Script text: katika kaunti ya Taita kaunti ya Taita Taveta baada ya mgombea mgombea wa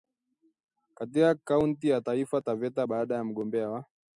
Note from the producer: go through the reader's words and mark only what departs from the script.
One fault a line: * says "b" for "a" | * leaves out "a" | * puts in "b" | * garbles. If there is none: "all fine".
* leaves out "kaunti ya Taita"
* leaves out "mgombea"